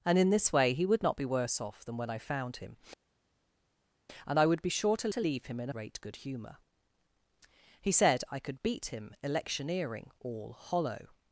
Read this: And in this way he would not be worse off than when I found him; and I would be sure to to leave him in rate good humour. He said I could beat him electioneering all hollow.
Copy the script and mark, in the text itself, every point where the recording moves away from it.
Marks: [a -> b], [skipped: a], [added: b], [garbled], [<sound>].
And in this way he would not be worse off than when I found him; and I would be sure to to leave him in rate good humour. He said I could beat him electioneering all hollow.